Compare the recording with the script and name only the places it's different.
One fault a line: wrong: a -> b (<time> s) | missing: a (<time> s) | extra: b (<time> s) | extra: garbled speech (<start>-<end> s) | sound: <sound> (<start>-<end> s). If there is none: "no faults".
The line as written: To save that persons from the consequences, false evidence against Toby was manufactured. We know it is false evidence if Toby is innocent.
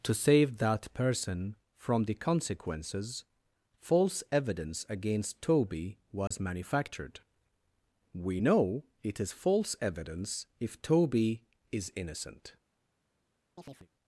wrong: persons -> person (0.9 s)
sound: dropout (6.3-6.3 s)
sound: chirp (13.6-13.9 s)